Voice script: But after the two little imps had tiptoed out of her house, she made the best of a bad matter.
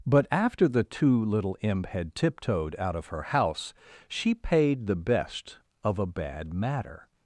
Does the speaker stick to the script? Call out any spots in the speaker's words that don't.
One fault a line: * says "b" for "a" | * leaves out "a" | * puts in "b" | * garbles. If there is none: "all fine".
* says "imp" for "imps"
* says "paid" for "made"